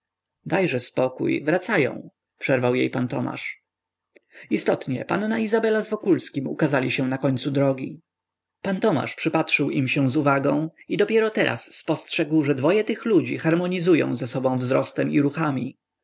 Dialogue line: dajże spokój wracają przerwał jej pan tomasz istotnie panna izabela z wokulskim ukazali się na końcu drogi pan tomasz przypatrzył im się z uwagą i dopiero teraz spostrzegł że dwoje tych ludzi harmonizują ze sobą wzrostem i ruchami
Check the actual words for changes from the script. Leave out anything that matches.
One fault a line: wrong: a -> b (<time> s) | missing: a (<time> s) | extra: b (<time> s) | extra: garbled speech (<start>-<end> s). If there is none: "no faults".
no faults